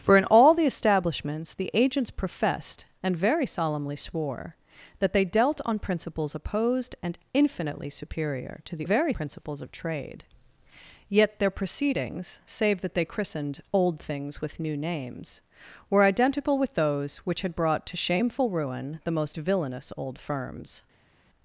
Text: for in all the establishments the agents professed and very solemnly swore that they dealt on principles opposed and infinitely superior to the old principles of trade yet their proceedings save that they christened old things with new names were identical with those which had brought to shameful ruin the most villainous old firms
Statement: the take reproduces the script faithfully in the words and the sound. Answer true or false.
false